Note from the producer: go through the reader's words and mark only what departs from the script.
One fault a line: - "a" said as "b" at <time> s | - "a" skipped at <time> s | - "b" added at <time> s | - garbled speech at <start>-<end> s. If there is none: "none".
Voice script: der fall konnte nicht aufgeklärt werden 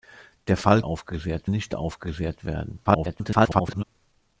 - "konnte" said as "aufgeklärt" at 0.8 s
- garbled speech at 2.8-3.8 s